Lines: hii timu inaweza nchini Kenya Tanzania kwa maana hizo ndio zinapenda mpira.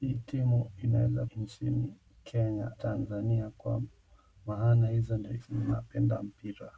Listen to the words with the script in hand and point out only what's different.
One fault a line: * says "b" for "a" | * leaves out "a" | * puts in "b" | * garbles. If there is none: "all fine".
all fine